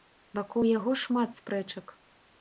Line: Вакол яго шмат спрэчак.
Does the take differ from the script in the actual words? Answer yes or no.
no